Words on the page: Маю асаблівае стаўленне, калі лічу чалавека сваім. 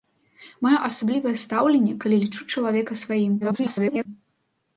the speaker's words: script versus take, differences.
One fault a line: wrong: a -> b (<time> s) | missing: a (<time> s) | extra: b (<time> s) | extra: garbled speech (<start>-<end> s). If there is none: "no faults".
extra: garbled speech (3.4-4.1 s)